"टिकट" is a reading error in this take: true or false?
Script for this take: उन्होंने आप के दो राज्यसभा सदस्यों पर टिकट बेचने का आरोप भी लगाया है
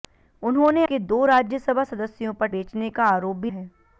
true